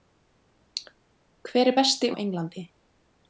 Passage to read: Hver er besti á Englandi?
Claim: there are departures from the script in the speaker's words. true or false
false